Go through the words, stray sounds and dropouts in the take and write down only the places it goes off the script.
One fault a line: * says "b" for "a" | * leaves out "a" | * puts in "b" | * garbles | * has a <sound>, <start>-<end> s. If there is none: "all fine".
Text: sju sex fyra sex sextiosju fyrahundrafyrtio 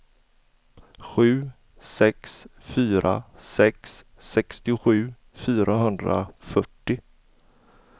all fine